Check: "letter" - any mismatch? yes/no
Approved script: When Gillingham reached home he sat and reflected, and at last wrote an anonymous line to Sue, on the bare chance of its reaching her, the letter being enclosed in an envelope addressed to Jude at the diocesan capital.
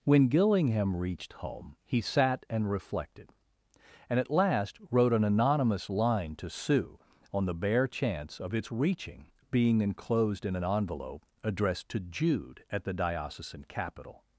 yes